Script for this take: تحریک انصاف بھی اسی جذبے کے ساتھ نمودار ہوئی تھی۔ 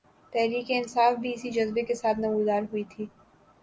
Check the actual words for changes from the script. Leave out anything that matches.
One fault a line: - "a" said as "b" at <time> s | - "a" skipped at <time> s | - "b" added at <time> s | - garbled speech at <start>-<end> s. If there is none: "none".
none